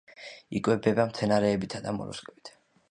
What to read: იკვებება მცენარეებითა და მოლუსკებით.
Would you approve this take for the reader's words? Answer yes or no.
yes